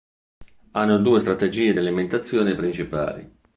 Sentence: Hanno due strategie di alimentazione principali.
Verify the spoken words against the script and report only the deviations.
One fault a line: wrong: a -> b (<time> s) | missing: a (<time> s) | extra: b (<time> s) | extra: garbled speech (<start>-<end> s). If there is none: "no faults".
no faults